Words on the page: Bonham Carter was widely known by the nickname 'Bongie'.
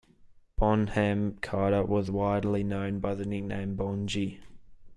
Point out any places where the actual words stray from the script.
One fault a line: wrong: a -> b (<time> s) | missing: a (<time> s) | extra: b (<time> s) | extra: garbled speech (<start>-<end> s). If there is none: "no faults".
no faults